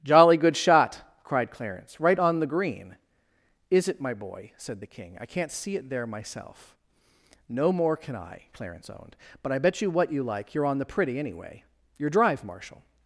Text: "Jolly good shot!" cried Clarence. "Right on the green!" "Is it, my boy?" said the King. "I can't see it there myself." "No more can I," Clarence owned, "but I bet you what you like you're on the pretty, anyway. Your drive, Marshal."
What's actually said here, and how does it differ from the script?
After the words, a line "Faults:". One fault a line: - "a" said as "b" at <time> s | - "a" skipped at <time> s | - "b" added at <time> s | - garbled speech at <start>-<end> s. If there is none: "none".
"Jolly good shot!" cried Clarence. "Right on the green!" "Is it, my boy?" said the King. "I can't see it there myself." "No more can I," Clarence owned, "but I bet you what you like you're on the pretty, anyway. Your drive, Marshal."
Faults:
none